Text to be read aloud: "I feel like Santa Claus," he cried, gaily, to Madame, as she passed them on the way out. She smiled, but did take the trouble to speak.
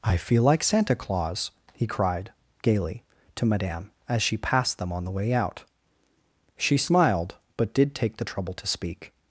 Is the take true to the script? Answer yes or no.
yes